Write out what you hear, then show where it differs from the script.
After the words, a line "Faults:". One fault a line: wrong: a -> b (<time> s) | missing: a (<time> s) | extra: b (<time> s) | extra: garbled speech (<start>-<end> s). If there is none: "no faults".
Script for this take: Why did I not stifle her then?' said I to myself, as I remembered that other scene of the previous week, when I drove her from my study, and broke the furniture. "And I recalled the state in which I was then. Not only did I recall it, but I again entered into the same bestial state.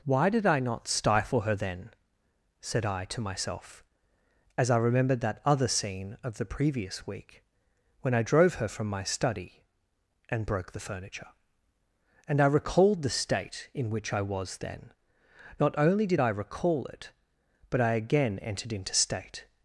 Why did I not stifle her then?' said I to myself, as I remembered that other scene of the previous week, when I drove her from my study, and broke the furniture. "And I recalled the state in which I was then. Not only did I recall it, but I again entered into state.
Faults:
missing: the same bestial (18.9 s)